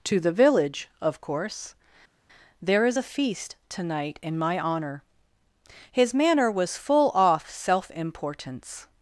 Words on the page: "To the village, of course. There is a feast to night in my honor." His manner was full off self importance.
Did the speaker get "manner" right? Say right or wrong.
right